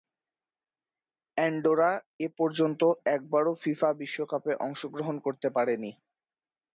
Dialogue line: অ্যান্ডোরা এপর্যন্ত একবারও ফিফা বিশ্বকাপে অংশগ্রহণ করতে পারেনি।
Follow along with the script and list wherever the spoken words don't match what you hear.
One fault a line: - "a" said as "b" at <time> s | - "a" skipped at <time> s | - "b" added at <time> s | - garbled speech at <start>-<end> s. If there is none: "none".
none